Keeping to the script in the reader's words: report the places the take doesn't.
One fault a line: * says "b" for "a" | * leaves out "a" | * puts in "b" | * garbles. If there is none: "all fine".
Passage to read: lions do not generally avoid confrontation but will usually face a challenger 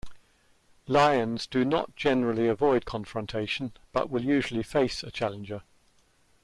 all fine